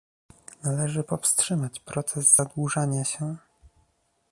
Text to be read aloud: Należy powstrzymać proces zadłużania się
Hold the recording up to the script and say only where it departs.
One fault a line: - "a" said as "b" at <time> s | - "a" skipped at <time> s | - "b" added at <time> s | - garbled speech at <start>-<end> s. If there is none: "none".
none